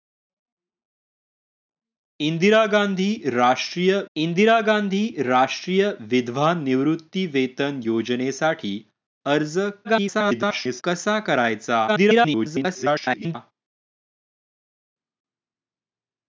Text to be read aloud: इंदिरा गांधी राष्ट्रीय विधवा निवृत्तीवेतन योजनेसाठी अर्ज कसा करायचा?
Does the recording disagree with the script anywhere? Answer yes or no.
yes